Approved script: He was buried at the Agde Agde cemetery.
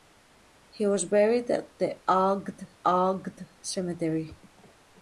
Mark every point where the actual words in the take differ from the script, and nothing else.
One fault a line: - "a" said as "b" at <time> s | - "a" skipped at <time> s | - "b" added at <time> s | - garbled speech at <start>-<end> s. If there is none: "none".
none